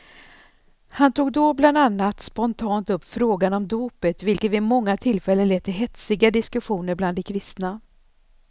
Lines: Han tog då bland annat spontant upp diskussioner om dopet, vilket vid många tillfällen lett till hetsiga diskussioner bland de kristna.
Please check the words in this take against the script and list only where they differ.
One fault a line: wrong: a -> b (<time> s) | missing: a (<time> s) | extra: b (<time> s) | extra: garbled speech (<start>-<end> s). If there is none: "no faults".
wrong: diskussioner -> frågan (3.0 s)